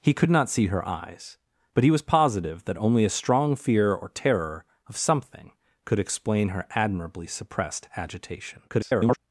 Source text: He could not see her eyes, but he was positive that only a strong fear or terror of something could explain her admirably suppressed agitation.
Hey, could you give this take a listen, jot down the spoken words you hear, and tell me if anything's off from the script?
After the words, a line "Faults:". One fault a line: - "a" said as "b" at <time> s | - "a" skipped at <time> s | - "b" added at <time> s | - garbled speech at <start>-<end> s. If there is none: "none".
He could not see her eyes, but he was positive that only a strong fear or terror of something could explain her admirably suppressed agitation. [garbled]
Faults:
- garbled speech at 8.7-9.2 s